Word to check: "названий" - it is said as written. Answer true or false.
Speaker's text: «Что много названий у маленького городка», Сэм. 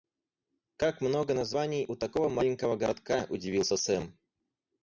true